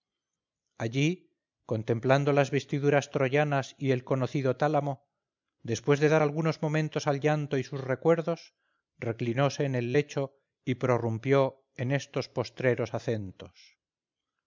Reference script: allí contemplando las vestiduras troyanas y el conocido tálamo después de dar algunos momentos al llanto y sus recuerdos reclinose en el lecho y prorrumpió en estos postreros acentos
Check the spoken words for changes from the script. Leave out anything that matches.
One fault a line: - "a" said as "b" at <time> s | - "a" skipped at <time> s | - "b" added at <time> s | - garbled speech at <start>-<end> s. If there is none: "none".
none